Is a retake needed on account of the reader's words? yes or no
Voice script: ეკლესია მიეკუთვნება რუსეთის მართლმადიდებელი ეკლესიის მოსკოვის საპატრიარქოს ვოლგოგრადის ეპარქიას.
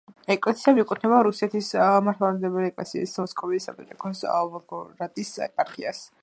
no